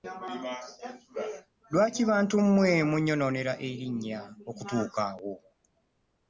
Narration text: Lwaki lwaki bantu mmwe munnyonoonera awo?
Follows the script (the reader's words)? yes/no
no